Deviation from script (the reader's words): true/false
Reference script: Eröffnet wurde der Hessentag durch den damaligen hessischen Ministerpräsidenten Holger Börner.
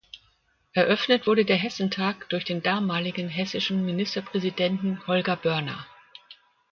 false